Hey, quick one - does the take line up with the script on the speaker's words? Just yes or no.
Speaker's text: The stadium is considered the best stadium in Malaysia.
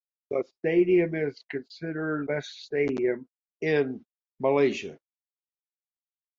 no